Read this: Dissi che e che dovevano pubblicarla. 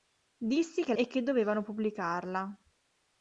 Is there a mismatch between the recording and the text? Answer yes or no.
no